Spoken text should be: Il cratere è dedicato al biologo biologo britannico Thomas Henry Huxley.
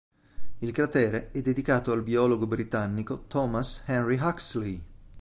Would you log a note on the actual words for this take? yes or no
yes